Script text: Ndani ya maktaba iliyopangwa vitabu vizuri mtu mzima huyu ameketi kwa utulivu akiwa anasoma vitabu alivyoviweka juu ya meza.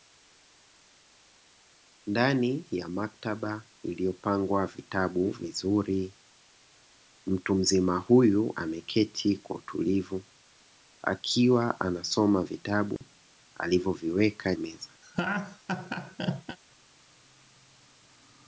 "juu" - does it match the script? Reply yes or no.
no